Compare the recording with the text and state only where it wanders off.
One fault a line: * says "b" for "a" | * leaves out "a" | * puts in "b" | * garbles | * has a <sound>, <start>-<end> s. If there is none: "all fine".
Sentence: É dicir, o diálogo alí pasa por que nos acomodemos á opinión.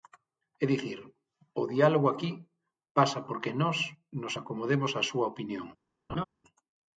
* says "aquí" for "alí"
* puts in "nós"
* puts in "súa"
* has a laugh, 6.1-6.2 s